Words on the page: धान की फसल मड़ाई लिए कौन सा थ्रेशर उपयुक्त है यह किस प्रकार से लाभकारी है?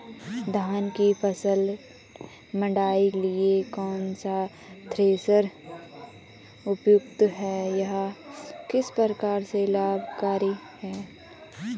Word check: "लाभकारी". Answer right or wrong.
right